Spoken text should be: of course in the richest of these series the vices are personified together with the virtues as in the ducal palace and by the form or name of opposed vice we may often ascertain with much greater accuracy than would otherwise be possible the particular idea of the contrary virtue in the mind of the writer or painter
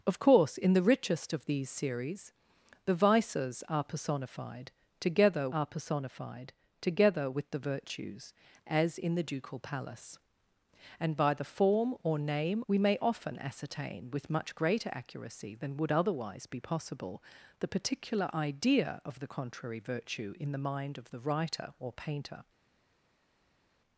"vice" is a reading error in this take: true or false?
true